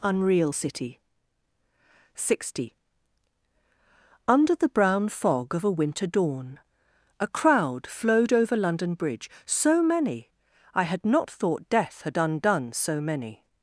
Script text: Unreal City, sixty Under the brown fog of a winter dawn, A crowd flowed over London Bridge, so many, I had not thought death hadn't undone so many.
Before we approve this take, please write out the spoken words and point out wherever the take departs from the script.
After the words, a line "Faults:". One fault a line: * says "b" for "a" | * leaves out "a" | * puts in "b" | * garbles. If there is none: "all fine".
Unreal City, sixty Under the brown fog of a winter dawn, A crowd flowed over London Bridge, so many, I had not thought death had undone so many.
Faults:
* says "had" for "hadn't"